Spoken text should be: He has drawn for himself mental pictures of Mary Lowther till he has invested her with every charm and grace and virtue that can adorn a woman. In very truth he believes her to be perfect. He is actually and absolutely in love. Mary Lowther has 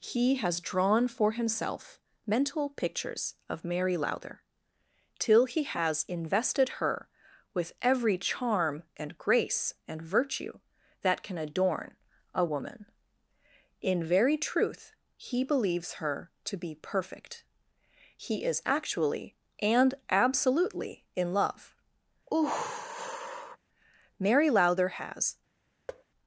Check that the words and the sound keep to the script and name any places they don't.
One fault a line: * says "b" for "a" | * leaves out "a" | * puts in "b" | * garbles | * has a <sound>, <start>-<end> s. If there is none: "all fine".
* has a sigh, 22.3-23.6 s
* has a thud, 25.9-26.0 s